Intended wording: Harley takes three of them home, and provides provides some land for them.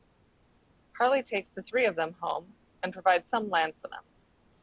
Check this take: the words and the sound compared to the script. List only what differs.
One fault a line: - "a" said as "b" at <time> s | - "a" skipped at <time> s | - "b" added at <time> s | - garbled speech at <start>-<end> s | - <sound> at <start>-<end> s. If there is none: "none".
- "the" added at 1.5 s
- "provides" skipped at 3.3 s